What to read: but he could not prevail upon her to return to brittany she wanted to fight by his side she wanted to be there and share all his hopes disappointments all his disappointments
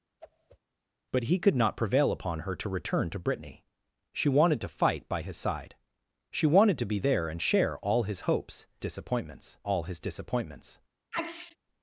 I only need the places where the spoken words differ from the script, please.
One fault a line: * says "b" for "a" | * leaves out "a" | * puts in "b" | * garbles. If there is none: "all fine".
all fine